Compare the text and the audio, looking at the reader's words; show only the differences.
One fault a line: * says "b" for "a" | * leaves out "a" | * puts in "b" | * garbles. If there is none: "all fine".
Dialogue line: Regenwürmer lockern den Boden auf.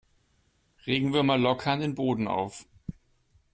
all fine